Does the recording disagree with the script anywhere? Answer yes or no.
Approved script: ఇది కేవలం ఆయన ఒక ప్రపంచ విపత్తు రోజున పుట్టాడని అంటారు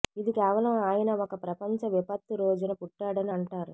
no